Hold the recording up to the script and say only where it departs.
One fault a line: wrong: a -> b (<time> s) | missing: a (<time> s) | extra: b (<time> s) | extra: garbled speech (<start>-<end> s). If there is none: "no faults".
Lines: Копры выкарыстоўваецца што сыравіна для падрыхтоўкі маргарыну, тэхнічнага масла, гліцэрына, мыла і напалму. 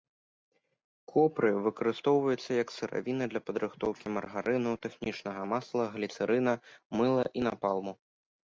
wrong: што -> як (2.6 s)